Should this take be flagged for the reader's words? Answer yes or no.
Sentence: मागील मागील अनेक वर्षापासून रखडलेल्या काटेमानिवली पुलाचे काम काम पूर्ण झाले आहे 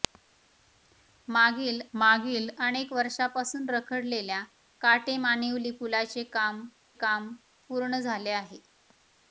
no